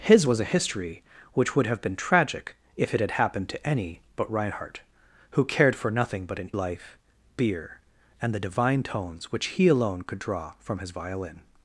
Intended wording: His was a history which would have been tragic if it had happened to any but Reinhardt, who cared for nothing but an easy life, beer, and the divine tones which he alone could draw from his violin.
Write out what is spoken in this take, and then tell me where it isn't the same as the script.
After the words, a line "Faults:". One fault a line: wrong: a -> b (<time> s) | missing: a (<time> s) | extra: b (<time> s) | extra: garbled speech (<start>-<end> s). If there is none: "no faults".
His was a history which would have been tragic if it had happened to any but Reinhardt, who cared for nothing but an life, beer, and the divine tones which he alone could draw from his violin.
Faults:
missing: easy (6.5 s)